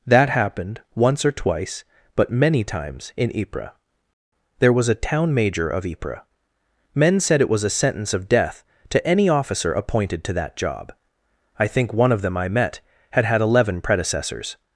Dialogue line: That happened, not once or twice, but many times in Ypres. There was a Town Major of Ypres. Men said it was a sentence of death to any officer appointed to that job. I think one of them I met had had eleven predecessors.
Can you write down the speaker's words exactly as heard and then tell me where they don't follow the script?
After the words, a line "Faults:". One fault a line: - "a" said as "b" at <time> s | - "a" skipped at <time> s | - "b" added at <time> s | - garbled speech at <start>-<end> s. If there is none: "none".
That happened, once or twice, but many times in Ypres. There was a Town Major of Ypres. Men said it was a sentence of death to any officer appointed to that job. I think one of them I met had had eleven predecessors.
Faults:
- "not" skipped at 0.8 s